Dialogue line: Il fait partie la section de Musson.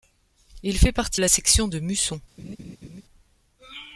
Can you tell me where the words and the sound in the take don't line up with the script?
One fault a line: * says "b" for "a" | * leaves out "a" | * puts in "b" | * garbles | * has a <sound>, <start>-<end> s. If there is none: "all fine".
* has a laugh, 2.4-3.0 s